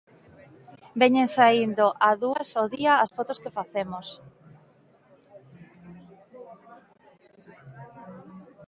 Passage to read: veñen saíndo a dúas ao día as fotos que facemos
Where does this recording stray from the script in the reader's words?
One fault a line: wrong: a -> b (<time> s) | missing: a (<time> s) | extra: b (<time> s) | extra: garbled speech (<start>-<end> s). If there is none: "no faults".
no faults